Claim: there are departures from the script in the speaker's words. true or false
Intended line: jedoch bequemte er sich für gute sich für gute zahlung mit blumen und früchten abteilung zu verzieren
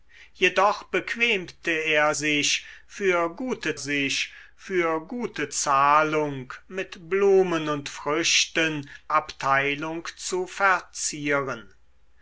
false